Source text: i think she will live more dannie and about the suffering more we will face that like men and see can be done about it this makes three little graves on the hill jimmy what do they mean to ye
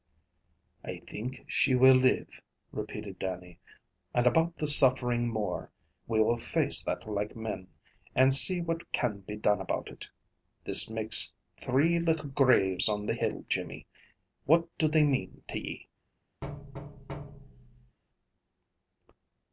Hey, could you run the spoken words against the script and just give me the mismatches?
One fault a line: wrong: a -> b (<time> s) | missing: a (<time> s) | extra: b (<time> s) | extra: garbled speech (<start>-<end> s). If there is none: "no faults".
wrong: more -> repeated (2.7 s)
extra: what (8.6 s)